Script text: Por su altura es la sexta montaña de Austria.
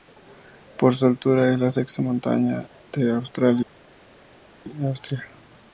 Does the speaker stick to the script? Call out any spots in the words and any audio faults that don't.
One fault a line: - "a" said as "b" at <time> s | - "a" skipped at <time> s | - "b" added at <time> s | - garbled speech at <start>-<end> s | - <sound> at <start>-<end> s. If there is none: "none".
none